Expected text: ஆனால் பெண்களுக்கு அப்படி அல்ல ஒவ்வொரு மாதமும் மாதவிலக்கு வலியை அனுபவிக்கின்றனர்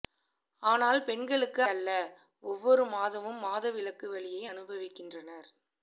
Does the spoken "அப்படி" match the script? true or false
false